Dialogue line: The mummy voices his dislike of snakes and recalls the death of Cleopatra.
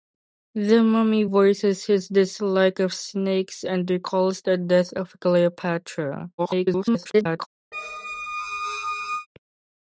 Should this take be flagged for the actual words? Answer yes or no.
yes